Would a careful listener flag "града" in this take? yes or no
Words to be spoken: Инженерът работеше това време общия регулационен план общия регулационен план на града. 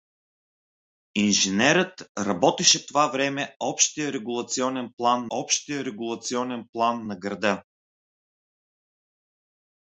no